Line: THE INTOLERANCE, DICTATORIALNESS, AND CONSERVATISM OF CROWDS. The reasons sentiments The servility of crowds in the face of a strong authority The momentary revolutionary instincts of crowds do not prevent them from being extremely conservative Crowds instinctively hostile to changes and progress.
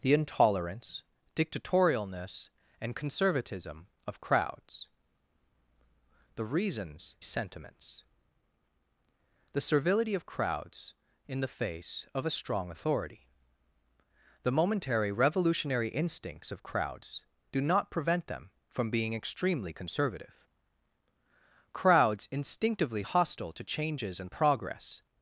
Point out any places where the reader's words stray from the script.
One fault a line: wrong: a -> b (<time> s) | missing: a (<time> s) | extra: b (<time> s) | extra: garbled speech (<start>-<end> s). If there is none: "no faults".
no faults